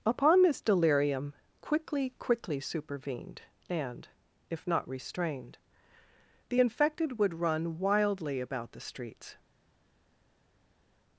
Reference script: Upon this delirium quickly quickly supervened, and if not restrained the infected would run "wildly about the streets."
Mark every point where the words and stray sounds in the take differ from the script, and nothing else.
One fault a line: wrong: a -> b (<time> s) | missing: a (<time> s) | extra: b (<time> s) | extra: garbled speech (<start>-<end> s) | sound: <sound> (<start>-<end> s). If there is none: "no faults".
no faults